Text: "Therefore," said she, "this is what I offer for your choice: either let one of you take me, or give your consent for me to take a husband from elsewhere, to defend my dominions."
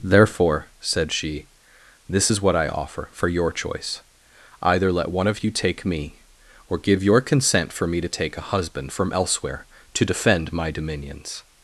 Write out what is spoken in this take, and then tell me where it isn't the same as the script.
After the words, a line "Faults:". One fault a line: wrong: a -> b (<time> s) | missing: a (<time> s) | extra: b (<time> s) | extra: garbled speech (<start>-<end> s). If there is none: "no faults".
"Therefore," said she, "this is what I offer for your choice: either let one of you take me, or give your consent for me to take a husband from elsewhere, to defend my dominions."
Faults:
no faults